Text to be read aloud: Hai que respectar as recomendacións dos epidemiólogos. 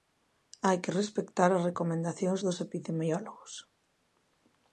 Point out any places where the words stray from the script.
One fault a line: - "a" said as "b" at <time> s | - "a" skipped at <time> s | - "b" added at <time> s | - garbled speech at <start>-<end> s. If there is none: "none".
none